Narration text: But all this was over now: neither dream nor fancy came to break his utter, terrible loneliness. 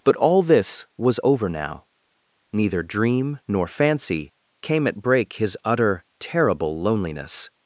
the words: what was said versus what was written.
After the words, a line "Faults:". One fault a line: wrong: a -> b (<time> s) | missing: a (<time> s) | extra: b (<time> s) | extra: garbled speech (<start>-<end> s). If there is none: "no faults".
But all this was over now: neither dream nor fancy came at break his utter, terrible loneliness.
Faults:
wrong: to -> at (4.9 s)